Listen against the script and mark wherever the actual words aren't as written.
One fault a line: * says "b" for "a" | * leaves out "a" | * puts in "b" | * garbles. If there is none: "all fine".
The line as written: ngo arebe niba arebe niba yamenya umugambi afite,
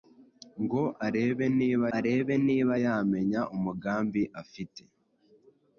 all fine